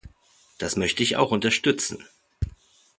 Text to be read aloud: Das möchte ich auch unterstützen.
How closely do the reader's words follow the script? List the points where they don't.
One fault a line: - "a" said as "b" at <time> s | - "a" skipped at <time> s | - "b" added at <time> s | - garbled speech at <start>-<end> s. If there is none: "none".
none